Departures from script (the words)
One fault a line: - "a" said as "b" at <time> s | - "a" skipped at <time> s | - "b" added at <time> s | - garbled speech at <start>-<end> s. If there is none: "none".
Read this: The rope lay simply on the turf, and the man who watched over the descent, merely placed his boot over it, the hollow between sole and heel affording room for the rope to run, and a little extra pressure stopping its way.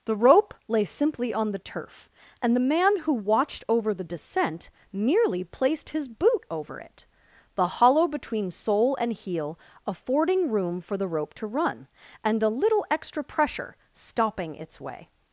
none